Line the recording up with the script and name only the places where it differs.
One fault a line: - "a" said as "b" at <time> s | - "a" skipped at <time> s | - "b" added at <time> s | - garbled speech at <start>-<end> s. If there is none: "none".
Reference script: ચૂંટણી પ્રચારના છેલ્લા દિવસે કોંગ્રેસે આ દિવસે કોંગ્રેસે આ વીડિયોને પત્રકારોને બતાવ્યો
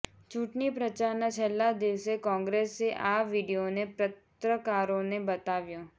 - "દિવસે કોંગ્રેસે આ" skipped at 3.2 s